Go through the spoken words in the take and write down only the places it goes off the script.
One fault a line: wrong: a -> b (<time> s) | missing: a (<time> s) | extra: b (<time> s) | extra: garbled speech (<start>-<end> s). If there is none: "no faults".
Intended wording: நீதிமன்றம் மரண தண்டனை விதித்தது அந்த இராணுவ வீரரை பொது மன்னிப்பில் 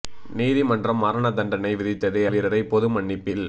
missing: அந்த இராணுவ (2.2 s)